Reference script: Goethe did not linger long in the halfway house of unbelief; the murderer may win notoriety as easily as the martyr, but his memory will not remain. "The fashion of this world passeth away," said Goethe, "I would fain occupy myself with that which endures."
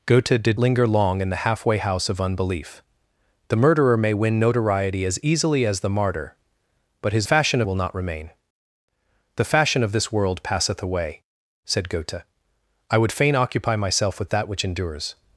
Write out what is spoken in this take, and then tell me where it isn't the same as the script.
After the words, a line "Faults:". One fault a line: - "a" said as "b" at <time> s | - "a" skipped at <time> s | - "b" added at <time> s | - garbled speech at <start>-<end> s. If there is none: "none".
Goethe did linger long in the halfway house of unbelief; the murderer may win notoriety as easily as the martyr, but his fashion will not remain. "The fashion of this world passeth away," said Goethe, "I would fain occupy myself with that which endures."
Faults:
- "not" skipped at 0.6 s
- "memory" said as "fashion" at 7.2 s